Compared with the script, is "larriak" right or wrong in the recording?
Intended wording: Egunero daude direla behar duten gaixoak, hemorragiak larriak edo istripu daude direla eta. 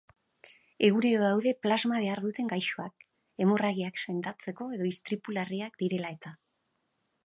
wrong